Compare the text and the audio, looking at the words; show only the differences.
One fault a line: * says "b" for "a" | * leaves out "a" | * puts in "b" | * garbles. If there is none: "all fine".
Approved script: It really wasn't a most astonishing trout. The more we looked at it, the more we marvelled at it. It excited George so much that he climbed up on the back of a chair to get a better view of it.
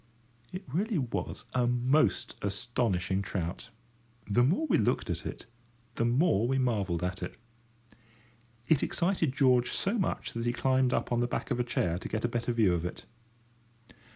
* says "was" for "wasn't"